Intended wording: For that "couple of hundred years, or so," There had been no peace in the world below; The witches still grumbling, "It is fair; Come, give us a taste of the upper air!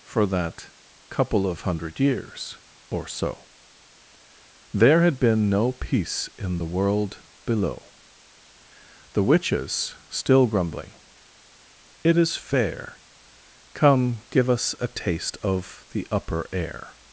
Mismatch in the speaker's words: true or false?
false